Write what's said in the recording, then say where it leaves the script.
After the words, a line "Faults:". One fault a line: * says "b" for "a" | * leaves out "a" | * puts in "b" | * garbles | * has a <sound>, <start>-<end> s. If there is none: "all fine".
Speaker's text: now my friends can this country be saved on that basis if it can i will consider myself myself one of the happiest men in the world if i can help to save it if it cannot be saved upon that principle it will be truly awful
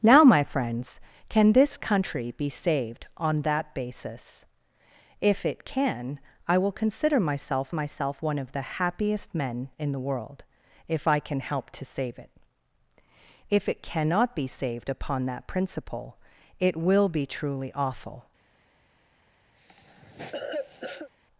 now my friends can this country be saved on that basis if it can i will consider myself myself one of the happiest men in the world if i can help to save it if it cannot be saved upon that principle it will be truly awful
Faults:
* has a cough, 19.5-21.1 s